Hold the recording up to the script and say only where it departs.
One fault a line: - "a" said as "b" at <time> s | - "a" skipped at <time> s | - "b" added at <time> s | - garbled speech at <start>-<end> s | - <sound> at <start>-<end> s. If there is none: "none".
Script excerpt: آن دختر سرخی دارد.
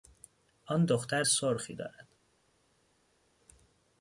none